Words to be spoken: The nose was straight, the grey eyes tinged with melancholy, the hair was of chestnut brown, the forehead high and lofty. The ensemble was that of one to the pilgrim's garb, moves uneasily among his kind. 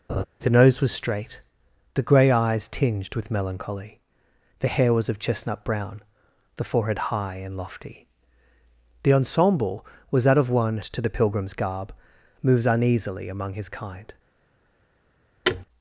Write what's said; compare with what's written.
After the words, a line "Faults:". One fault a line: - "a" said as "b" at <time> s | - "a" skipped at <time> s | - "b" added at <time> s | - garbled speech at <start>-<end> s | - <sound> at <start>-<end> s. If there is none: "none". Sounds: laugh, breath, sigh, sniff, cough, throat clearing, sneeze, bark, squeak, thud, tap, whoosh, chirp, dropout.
The nose was straight, the grey eyes tinged with melancholy, the hair was of chestnut brown, the forehead high and lofty. The ensemble was that of one to the pilgrim's garb, moves uneasily among his kind.
Faults:
- laugh at 0.1-0.2 s
- thud at 15.4-15.6 s